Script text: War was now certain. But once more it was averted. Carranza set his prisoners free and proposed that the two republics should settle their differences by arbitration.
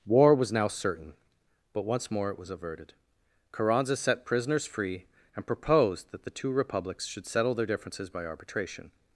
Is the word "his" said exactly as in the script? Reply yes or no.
no